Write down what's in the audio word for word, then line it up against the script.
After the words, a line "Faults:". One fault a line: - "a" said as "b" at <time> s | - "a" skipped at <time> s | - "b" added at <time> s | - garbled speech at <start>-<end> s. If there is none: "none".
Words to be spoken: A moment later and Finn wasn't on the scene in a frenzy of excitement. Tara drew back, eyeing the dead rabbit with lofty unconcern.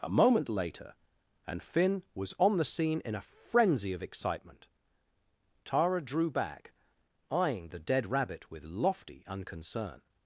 A moment later and Finn was on the scene in a frenzy of excitement. Tara drew back, eyeing the dead rabbit with lofty unconcern.
Faults:
- "wasn't" said as "was" at 2.1 s